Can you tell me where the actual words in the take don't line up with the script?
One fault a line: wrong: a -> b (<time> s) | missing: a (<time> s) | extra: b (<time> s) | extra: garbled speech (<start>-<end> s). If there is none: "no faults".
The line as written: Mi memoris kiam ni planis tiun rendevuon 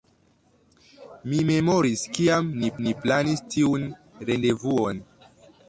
extra: ni (2.9 s)